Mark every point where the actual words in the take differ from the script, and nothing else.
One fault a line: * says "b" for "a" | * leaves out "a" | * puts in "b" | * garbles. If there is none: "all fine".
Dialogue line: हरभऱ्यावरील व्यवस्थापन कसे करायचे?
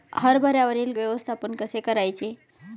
all fine